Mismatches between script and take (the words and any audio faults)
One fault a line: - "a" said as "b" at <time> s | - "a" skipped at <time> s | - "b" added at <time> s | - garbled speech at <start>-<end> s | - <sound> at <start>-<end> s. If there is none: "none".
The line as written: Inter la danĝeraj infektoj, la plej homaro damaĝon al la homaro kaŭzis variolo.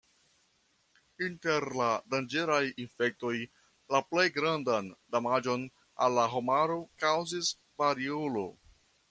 - "homaro" said as "grandan" at 4.4 s